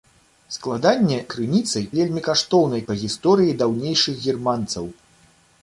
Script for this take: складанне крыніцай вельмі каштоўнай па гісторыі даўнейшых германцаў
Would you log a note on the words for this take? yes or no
no